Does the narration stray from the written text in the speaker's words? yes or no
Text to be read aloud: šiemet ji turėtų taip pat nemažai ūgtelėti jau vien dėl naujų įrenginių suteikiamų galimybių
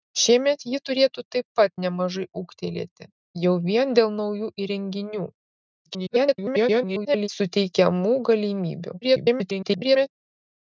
yes